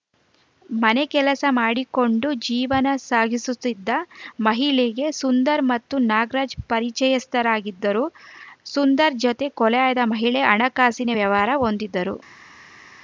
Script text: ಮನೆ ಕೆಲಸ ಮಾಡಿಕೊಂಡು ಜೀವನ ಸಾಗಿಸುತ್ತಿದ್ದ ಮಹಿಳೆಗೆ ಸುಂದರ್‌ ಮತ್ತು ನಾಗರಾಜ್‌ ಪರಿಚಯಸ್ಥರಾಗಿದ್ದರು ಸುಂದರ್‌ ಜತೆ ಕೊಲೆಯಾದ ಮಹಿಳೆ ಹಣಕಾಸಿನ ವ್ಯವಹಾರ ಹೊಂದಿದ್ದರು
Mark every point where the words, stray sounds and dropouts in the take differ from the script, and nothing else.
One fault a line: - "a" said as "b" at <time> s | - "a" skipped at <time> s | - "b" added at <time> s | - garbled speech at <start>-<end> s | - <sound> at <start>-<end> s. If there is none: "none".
none